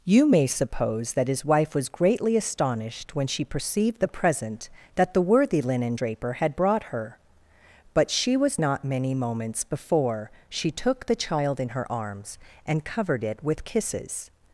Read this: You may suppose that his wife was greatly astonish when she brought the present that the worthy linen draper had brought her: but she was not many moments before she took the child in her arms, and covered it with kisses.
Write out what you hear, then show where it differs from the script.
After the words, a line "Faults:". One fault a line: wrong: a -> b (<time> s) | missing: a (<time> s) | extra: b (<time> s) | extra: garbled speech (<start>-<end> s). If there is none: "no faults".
You may suppose that his wife was greatly astonished when she perceived the present that the worthy linen draper had brought her: but she was not many moments before she took the child in her arms, and covered it with kisses.
Faults:
wrong: astonish -> astonished (2.4 s)
wrong: brought -> perceived (3.5 s)